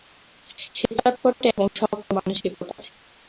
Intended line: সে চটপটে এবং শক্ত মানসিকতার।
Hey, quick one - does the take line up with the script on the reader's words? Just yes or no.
yes